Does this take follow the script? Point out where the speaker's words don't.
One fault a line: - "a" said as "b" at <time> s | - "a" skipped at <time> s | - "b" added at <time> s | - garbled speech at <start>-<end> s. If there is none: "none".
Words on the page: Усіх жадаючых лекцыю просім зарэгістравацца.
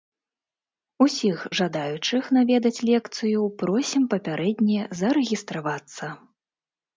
- "наведаць" added at 2.4 s
- "папярэдне" added at 4.1 s